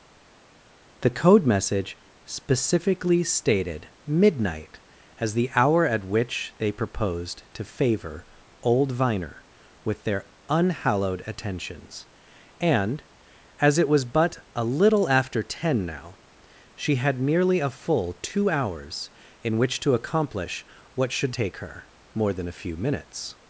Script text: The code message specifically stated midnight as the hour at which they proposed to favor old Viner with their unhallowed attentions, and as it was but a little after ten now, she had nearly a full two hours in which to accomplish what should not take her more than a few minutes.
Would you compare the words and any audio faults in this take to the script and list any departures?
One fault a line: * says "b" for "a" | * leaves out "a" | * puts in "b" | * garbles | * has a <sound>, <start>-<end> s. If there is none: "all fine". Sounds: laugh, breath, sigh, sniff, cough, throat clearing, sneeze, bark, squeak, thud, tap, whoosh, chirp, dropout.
* leaves out "not"